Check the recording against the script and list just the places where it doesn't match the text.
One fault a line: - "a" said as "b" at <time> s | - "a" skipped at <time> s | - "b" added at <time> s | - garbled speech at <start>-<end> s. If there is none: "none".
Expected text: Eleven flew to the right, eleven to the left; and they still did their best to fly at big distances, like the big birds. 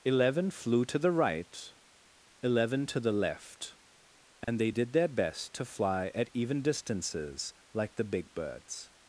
- "still" skipped at 4.7 s
- "big" said as "even" at 6.3 s